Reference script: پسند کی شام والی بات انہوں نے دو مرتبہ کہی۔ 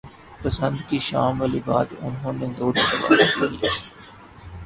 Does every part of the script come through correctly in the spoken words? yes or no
yes